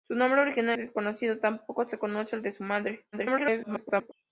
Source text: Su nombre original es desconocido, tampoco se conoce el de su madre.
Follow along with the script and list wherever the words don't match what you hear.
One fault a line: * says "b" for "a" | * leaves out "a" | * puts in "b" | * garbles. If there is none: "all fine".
* leaves out "es"
* garbles